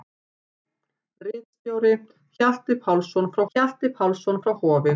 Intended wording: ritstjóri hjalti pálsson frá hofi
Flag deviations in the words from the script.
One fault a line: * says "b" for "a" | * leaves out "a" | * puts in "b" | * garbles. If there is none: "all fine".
* puts in "hjalti pálsson frá"